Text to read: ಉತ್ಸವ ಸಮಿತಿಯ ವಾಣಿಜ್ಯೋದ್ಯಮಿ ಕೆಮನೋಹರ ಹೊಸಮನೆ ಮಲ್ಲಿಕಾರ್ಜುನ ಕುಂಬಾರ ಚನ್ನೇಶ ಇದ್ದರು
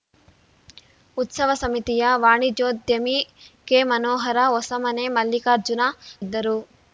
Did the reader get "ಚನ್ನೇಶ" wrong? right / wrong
wrong